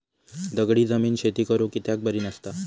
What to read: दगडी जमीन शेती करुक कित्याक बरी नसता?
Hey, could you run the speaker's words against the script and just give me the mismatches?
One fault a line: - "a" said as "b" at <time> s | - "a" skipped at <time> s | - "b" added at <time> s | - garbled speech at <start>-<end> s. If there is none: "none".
none